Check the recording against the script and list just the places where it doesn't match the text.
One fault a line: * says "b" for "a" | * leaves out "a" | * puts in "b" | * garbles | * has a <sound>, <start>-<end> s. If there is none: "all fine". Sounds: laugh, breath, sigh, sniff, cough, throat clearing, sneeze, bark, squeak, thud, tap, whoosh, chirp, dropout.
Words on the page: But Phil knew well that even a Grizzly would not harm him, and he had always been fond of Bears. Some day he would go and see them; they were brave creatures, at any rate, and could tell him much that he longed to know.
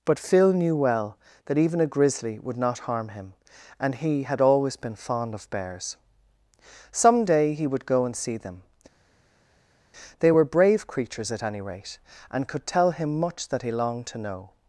all fine